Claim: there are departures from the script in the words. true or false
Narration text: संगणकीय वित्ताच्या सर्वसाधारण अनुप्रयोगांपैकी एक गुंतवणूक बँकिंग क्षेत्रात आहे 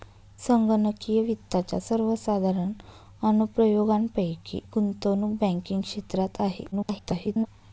true